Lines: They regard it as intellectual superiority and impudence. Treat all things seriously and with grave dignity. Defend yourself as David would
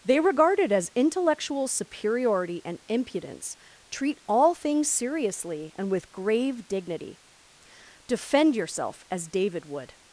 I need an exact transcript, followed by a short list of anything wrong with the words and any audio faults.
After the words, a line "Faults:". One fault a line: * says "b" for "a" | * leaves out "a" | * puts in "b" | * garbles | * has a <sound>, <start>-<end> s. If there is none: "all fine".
They regard it as intellectual superiority and impudence. Treat all things seriously and with grave dignity. Defend yourself as David would
Faults:
all fine